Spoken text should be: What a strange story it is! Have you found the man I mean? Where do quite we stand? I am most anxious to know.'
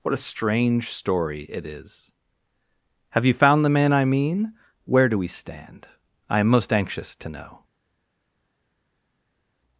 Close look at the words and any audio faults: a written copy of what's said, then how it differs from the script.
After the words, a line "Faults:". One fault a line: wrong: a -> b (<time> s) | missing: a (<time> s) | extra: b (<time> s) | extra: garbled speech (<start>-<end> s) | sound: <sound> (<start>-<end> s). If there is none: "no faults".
What a strange story it is! Have you found the man I mean? Where do we stand? I am most anxious to know.'
Faults:
missing: quite (5.2 s)